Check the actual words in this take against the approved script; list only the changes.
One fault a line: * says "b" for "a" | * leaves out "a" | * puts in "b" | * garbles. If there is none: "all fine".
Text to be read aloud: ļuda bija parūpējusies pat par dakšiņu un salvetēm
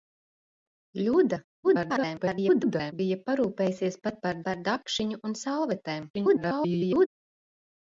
* garbles
* puts in "par"
* garbles